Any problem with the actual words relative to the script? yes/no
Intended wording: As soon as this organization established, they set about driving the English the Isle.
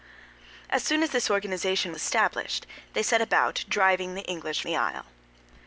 no